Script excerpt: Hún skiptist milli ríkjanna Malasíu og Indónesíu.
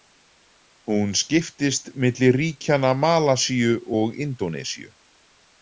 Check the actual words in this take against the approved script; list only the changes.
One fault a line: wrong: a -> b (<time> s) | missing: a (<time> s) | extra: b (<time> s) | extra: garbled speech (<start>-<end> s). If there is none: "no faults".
no faults